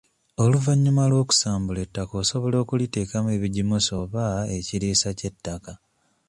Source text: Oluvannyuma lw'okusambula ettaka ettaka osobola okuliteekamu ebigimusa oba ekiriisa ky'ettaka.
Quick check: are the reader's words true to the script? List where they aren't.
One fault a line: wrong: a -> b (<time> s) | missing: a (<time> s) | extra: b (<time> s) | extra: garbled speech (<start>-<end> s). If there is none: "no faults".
missing: ettaka (2.1 s)